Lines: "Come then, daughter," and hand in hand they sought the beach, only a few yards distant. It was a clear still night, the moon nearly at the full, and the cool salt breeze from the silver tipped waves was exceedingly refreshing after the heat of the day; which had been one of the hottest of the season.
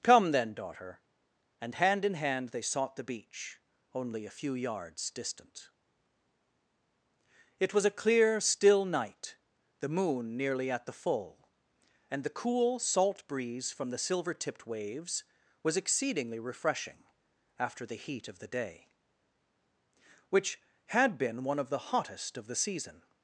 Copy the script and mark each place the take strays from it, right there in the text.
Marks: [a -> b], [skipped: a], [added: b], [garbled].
"Come then, daughter," and hand in hand they sought the beach, only a few yards distant. It was a clear still night, the moon nearly at the full, and the cool salt breeze from the silver tipped waves was exceedingly refreshing after the heat of the day; which had been one of the hottest of the season.